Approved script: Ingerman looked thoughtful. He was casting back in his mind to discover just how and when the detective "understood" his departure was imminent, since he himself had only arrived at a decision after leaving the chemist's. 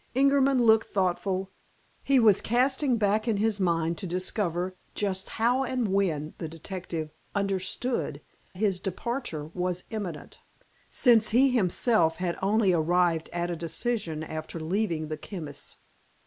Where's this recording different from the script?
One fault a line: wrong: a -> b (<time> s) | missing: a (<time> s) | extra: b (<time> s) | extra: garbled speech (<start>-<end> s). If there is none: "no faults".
no faults